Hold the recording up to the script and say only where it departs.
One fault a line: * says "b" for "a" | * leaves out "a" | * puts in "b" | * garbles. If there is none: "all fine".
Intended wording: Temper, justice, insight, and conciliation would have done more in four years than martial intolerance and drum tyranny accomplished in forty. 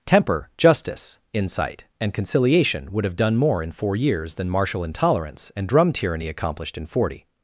all fine